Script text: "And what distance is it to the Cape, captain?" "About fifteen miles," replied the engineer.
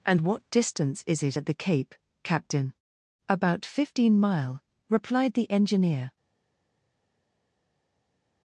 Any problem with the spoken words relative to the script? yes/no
yes